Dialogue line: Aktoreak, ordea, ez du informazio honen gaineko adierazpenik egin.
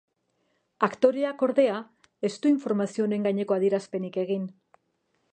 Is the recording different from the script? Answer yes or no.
no